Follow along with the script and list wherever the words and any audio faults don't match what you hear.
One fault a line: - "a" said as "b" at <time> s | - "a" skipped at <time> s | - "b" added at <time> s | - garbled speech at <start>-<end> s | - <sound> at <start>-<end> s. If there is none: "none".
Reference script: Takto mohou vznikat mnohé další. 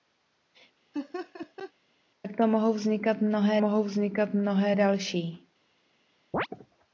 - laugh at 0.9-1.7 s
- "mohou vznikat mnohé" added at 3.6 s
- chirp at 6.3-6.5 s